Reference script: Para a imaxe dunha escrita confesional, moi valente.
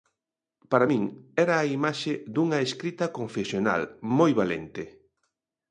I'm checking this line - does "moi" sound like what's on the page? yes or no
yes